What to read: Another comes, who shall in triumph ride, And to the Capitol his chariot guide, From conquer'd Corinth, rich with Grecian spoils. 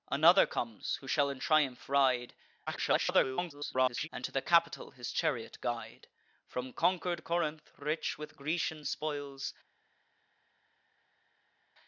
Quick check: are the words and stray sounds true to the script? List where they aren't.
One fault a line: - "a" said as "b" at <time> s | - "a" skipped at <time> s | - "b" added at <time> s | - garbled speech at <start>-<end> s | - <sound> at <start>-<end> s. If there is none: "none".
- garbled speech at 2.7-4.1 s